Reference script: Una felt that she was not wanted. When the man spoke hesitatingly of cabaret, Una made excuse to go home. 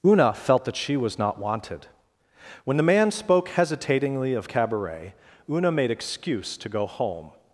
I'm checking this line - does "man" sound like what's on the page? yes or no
yes